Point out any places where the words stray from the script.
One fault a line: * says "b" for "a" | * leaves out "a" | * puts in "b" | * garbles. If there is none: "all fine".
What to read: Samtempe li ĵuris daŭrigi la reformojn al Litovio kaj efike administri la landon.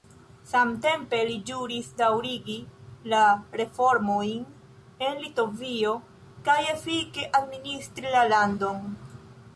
* says "en" for "al"